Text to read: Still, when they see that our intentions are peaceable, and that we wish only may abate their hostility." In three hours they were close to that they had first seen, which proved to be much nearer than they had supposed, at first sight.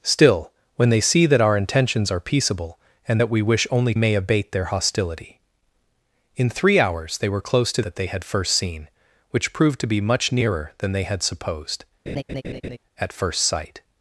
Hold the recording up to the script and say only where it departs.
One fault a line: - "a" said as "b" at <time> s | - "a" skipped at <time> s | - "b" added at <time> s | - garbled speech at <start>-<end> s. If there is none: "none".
none